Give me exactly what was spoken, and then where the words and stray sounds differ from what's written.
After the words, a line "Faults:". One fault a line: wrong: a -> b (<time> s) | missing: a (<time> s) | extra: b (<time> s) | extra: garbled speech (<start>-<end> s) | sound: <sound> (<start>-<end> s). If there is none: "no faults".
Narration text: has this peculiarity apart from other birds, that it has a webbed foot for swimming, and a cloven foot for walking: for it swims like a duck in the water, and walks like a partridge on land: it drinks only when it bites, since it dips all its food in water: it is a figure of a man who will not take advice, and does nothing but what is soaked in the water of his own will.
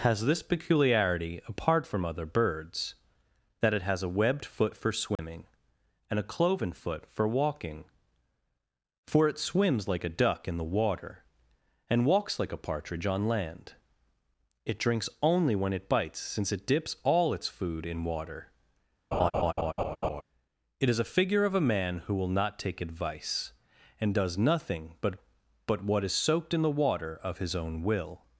has this peculiarity apart from other birds, that it has a webbed foot for swimming, and a cloven foot for walking: for it swims like a duck in the water, and walks like a partridge on land: it drinks only when it bites, since it dips all its food in water: it is a figure of a man who will not take advice, and does nothing but but what is soaked in the water of his own will.
Faults:
sound: dropout (5.2-5.2 s)
sound: laugh (19.1-20.2 s)
extra: but (25.7 s)